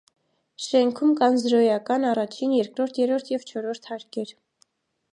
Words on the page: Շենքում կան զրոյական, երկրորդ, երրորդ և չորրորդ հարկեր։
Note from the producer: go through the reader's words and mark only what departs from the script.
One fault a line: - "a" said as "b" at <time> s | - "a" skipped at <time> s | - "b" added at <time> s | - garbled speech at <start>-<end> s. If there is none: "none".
- "առաջին" added at 2.1 s